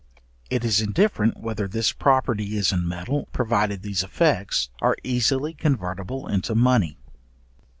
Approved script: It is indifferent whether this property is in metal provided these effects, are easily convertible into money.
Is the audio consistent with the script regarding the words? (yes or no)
yes